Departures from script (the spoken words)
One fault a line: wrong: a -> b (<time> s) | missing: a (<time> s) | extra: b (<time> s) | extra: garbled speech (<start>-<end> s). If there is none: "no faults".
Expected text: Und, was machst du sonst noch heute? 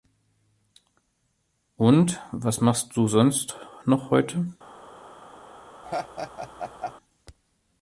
no faults